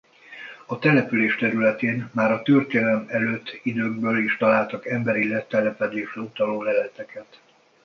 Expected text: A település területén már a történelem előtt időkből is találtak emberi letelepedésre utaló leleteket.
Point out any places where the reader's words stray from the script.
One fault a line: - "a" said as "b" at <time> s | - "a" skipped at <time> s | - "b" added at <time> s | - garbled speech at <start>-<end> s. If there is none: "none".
none